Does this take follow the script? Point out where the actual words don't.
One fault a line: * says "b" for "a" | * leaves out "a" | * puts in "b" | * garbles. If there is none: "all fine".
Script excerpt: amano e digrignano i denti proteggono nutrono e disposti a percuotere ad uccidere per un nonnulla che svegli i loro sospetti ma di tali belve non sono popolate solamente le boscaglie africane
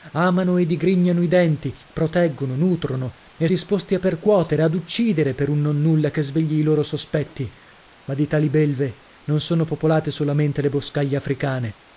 all fine